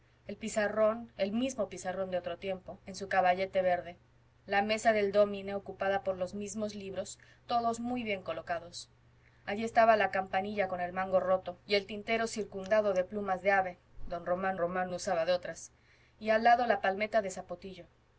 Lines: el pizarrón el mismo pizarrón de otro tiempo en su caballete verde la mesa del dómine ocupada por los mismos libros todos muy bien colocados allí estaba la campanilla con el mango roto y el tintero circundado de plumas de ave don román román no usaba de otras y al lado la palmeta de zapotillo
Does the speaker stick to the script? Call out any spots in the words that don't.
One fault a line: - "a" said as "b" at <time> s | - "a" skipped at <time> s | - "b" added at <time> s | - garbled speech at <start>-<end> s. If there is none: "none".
none